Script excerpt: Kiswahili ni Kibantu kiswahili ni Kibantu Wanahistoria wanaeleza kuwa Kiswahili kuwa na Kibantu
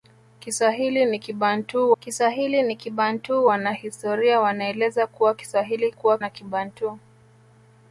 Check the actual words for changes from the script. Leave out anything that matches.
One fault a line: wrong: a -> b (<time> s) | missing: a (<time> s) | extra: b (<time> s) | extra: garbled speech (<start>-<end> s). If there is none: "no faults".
no faults